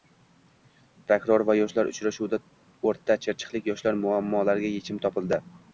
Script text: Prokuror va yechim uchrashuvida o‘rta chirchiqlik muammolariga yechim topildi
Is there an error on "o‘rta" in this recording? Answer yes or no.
no